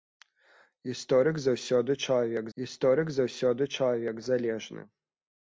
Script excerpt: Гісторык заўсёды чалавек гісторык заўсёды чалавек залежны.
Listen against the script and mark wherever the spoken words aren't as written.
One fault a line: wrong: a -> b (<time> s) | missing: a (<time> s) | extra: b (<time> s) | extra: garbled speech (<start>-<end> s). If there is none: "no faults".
no faults